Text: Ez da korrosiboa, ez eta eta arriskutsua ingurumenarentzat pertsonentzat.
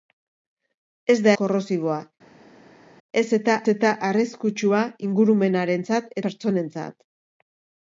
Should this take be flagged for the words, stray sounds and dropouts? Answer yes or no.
no